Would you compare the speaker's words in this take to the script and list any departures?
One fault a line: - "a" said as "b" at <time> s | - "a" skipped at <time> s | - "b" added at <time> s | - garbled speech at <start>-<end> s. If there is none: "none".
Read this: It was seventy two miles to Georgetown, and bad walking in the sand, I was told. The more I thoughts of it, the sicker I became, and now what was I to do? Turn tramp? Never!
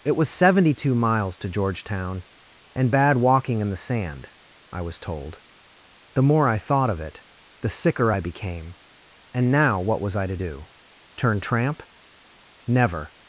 - "thoughts" said as "thought" at 6.6 s